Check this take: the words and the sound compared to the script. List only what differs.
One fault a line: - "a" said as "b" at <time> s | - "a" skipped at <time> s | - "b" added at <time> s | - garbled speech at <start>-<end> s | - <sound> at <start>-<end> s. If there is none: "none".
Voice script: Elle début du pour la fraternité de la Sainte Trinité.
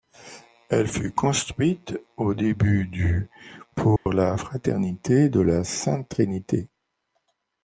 - "fut construite au" added at 0.9 s
- dropout at 4.0-4.1 s